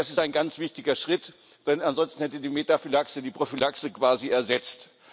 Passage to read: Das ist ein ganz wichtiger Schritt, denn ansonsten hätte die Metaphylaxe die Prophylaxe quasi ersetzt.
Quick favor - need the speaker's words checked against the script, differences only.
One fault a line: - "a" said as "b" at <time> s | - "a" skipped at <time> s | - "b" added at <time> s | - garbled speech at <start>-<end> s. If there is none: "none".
none